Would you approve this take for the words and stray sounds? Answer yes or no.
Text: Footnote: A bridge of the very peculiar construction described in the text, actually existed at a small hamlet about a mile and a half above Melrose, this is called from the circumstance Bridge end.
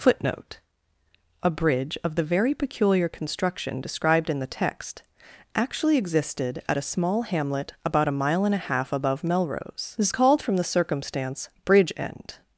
yes